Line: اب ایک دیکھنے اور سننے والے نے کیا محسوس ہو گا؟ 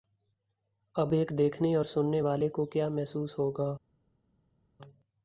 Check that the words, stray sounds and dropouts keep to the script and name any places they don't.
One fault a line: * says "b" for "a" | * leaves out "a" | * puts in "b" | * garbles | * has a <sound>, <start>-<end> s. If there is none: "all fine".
* says "کو" for "نے"